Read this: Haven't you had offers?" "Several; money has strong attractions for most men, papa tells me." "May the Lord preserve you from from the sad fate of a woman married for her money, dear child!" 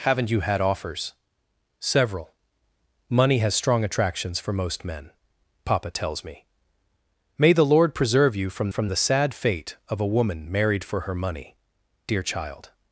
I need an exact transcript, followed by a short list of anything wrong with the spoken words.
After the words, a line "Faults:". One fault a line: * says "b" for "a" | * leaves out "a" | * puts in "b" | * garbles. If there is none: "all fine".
Haven't you had offers?" "Several; money has strong attractions for most men, papa tells me." "May the Lord preserve you from from the sad fate of a woman married for her money, dear child!"
Faults:
all fine